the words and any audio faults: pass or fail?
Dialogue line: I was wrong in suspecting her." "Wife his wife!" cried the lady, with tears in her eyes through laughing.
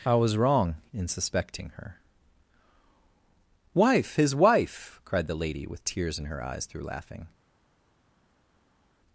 pass